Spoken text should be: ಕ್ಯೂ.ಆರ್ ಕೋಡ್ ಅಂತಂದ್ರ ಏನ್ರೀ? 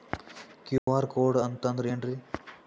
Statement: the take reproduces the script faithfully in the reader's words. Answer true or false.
true